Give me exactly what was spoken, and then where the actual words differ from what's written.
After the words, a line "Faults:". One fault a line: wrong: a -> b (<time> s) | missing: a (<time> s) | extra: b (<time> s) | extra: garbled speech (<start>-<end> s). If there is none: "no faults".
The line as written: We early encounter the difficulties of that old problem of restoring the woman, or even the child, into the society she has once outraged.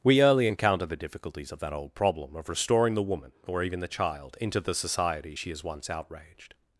We early encounter the difficulties of that old problem of restoring the woman, or even the child, into the society she has once outraged.
Faults:
no faults